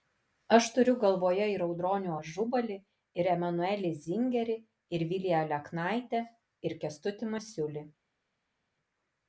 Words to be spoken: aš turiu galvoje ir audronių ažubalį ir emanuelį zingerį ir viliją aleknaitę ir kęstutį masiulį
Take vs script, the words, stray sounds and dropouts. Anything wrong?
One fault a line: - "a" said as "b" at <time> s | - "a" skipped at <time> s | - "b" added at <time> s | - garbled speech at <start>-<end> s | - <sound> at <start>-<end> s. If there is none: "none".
none